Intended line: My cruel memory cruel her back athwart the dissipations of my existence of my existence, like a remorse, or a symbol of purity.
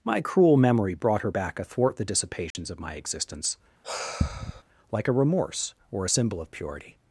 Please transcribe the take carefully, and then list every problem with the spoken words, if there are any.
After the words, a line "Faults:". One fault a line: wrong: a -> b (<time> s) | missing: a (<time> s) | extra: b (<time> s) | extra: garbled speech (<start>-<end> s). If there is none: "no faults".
My cruel memory brought her back athwart the dissipations of my existence, like a remorse, or a symbol of purity.
Faults:
wrong: cruel -> brought (0.9 s)
missing: of my existence (3.6 s)